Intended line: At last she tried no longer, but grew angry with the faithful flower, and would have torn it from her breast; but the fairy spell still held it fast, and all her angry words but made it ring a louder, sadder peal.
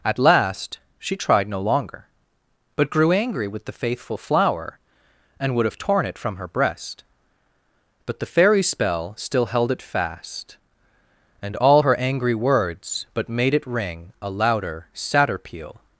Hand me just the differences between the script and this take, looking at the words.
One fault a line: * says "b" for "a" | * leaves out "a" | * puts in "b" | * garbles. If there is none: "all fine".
all fine